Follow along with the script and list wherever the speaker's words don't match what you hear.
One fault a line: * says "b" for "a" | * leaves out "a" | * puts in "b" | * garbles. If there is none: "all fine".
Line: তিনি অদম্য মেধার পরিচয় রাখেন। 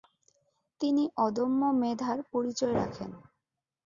all fine